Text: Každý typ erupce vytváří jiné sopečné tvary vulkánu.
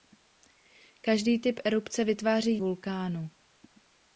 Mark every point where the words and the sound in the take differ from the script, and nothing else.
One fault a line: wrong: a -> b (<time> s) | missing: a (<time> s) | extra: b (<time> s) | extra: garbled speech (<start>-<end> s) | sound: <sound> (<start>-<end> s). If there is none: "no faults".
missing: jiné sopečné tvary (2.6 s)